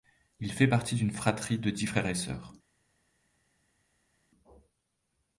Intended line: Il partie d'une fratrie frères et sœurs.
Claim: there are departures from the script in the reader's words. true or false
true